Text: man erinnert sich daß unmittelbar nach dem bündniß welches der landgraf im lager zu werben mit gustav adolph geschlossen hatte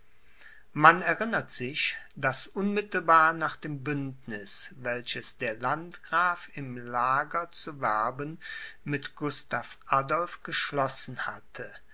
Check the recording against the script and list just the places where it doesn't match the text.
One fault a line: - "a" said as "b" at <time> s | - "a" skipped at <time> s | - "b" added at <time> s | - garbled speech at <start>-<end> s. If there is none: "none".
none